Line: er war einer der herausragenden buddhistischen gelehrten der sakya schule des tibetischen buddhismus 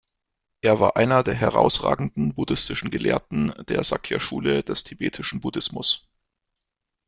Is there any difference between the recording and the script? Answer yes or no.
no